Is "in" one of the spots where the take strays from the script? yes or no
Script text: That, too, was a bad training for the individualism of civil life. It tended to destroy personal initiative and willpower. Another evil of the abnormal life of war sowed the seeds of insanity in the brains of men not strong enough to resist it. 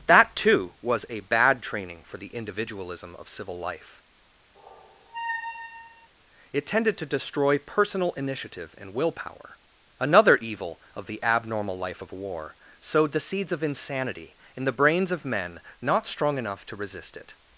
no